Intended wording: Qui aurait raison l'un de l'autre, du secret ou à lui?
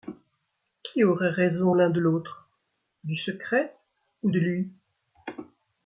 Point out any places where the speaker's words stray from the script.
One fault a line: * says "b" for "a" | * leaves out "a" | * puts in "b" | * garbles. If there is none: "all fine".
* says "de" for "à"